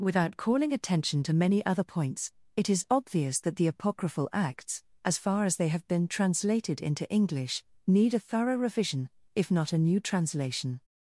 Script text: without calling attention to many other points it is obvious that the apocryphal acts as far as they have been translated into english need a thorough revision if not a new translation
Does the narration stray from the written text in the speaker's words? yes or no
no